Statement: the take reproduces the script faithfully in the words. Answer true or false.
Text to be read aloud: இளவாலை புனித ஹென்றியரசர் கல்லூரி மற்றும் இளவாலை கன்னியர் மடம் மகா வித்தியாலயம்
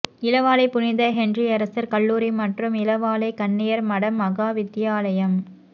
true